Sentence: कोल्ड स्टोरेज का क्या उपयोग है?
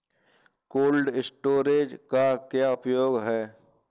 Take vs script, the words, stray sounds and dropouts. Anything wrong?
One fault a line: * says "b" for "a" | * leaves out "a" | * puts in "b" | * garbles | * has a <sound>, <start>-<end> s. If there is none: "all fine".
all fine